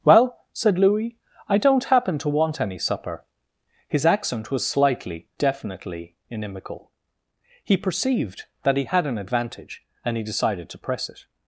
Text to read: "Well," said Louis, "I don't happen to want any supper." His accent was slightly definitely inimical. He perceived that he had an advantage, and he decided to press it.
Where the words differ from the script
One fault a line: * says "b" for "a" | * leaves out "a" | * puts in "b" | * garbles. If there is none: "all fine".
all fine